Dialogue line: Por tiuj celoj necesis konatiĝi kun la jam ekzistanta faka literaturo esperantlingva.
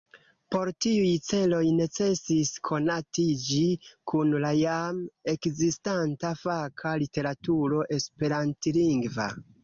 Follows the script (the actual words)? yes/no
yes